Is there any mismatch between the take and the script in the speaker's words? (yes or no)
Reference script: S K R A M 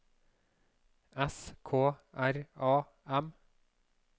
no